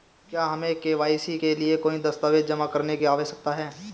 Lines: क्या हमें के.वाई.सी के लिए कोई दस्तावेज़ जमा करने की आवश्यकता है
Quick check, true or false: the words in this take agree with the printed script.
true